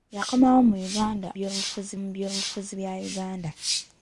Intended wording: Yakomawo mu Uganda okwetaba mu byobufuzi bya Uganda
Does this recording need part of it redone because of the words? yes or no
yes